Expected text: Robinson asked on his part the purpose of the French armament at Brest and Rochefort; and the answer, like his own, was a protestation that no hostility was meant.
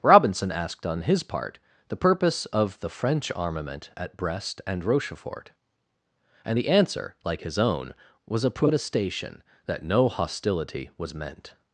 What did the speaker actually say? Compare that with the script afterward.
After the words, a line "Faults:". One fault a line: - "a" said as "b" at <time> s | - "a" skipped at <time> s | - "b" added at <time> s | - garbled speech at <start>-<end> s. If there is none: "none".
Robinson asked on his part the purpose of the French armament at Brest and Rochefort; and the answer, like his own, was a protestation that no hostility was meant.
Faults:
none